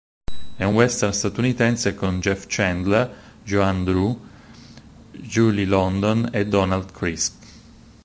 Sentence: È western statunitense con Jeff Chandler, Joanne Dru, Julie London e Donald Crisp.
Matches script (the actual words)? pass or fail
fail